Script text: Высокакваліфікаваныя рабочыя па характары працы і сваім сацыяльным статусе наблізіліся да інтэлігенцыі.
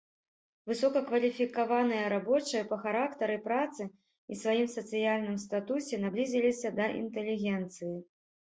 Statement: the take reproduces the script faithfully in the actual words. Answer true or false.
true